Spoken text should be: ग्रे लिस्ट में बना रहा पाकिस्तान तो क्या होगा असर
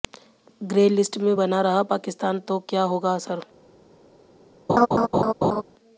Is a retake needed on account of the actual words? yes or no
no